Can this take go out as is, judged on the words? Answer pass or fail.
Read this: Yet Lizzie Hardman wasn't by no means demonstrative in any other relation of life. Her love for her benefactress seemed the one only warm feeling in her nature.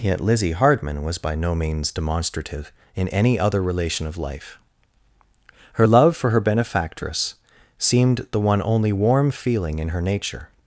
fail